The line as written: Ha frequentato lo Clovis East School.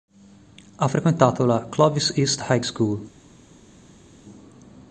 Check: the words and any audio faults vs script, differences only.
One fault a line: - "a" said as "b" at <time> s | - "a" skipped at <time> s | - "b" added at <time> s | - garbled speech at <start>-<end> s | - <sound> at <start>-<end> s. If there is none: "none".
- "lo" said as "la" at 1.4 s
- "High" added at 2.5 s